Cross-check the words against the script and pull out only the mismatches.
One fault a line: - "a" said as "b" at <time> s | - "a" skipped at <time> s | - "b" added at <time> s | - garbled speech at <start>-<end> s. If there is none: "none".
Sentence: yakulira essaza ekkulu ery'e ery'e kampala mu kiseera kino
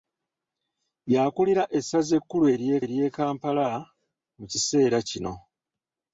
none